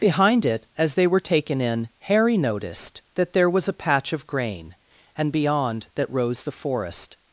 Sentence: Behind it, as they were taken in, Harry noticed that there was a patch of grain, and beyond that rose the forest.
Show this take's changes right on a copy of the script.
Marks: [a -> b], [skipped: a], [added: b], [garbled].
Behind it, as they were taken in, Harry noticed that there was a patch of grain, and beyond that rose the forest.